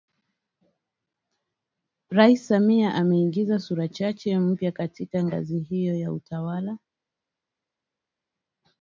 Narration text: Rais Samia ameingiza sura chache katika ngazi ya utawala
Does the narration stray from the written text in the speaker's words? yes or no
yes